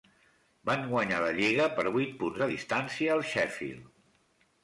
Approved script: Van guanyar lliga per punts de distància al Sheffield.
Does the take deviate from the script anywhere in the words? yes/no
yes